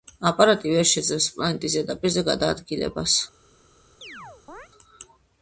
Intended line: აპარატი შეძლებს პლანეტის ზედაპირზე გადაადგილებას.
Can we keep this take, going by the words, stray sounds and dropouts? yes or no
no